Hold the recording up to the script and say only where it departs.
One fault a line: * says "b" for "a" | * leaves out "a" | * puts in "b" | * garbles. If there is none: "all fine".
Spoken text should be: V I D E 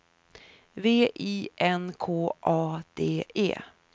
* puts in "N K A"